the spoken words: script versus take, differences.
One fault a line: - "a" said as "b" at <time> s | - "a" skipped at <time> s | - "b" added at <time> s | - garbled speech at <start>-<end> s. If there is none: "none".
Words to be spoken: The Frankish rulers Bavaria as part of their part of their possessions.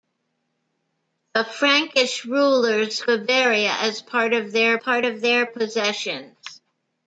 none